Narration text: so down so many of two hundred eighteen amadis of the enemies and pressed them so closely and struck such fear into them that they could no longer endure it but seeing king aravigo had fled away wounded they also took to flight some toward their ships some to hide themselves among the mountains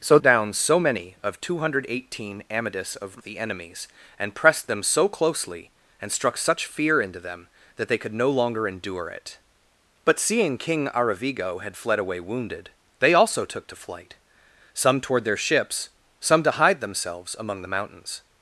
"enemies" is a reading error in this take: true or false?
false